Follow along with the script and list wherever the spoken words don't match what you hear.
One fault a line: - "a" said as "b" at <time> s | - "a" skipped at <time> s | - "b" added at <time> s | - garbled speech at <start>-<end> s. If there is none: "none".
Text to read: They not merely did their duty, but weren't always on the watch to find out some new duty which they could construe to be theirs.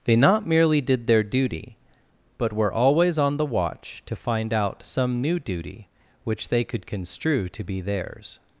- "weren't" said as "were" at 2.5 s